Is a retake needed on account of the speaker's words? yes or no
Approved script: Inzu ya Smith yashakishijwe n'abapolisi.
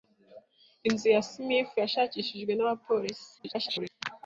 yes